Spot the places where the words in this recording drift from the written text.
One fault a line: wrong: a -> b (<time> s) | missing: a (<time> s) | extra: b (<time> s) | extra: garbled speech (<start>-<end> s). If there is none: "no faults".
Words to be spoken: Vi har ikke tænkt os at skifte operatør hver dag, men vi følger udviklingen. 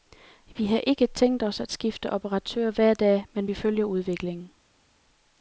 no faults